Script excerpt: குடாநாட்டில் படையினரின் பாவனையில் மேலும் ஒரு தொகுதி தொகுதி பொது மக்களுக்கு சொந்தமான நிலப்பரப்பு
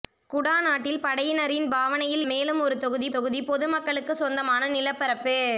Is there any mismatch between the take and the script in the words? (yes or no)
no